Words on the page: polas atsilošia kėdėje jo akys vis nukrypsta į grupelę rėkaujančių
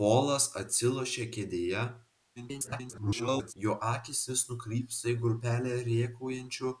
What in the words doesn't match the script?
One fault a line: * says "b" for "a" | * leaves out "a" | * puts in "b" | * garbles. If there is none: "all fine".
* garbles